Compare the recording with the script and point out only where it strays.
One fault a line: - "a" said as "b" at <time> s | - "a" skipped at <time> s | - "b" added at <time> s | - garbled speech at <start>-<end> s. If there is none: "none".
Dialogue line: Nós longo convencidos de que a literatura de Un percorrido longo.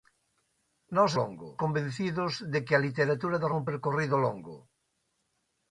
none